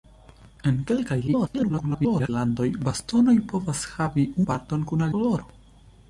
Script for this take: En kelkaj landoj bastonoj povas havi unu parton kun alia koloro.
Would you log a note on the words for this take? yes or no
yes